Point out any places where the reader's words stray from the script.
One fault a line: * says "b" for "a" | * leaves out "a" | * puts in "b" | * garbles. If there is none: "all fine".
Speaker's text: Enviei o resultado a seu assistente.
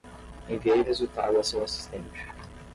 all fine